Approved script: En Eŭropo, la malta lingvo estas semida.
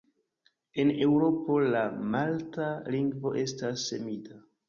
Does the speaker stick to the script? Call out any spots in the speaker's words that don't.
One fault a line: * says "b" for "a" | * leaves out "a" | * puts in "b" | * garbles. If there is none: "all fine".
all fine